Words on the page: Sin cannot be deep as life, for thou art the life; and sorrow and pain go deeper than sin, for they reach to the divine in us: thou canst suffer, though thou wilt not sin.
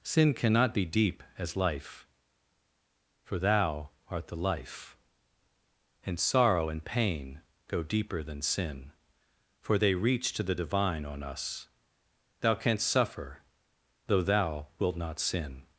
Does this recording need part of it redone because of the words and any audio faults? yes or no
yes